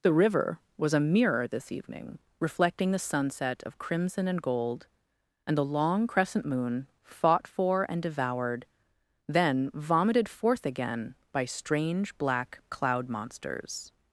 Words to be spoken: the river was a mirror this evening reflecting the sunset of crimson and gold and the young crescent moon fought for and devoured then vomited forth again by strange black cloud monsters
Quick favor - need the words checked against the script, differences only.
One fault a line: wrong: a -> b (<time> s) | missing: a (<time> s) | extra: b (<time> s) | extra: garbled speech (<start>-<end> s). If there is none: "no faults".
wrong: young -> long (5.7 s)